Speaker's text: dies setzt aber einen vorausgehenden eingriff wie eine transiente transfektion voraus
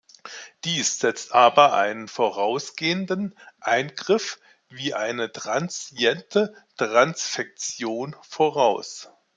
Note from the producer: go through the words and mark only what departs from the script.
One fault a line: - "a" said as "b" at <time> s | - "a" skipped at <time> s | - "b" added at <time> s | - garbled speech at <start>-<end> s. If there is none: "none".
none